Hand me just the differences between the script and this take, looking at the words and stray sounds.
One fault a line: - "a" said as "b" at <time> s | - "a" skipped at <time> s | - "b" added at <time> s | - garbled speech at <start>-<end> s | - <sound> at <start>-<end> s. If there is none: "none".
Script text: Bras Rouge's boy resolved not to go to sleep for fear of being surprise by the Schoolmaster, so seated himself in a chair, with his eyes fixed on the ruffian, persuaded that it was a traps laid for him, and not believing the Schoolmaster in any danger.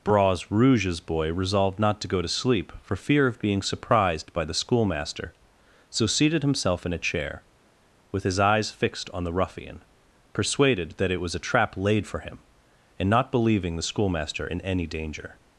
- "surprise" said as "surprised" at 3.6 s
- "traps" said as "trap" at 11.4 s